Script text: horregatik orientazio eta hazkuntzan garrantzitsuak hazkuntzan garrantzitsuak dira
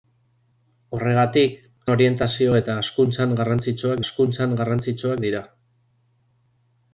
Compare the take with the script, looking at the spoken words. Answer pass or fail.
pass